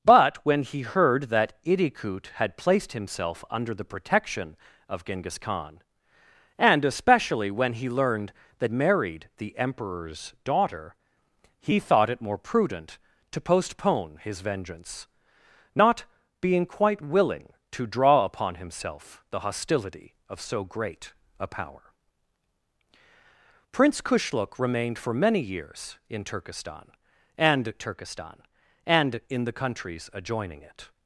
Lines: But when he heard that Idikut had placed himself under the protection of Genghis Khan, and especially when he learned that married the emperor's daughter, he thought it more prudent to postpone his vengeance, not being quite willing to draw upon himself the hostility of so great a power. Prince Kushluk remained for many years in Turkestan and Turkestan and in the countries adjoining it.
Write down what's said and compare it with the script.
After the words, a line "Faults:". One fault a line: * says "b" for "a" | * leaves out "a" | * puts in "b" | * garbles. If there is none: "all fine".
But when he heard that Idikut had placed himself under the protection of Genghis Khan, and especially when he learned that married the emperor's daughter, he thought it more prudent to postpone his vengeance, not being quite willing to draw upon himself the hostility of so great a power. Prince Kushluk remained for many years in Turkestan and Turkestan and in the countries adjoining it.
Faults:
all fine